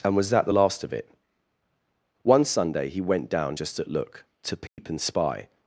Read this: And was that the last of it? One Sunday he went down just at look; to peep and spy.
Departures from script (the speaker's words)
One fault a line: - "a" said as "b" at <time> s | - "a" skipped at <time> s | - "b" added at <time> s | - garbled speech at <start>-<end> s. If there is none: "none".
none